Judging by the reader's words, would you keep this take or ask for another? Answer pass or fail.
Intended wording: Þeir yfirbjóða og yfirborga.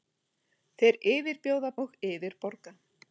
pass